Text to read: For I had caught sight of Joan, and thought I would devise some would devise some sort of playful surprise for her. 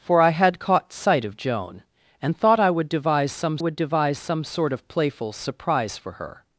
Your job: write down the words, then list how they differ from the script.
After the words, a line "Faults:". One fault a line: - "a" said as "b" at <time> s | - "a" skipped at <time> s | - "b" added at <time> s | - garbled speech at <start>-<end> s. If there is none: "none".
For I had caught sight of Joan, and thought I would devise some would devise some sort of playful surprise for her.
Faults:
none